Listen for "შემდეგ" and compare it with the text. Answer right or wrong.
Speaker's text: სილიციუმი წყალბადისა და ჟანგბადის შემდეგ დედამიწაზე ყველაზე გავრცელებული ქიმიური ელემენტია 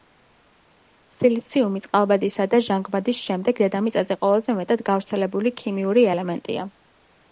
right